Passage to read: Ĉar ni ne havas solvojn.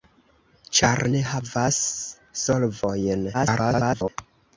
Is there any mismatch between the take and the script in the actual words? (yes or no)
yes